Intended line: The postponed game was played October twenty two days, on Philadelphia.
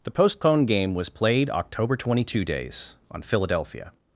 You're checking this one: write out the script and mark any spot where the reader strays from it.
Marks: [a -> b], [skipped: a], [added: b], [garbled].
The postponed game was played October twenty two days, on Philadelphia.